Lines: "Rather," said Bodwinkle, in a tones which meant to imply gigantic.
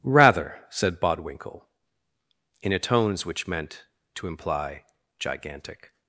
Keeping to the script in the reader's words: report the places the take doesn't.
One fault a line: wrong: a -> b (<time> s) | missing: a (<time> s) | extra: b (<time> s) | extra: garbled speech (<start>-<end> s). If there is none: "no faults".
no faults